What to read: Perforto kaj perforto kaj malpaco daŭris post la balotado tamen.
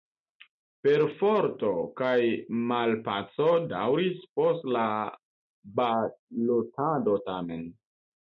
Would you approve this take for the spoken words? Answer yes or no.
no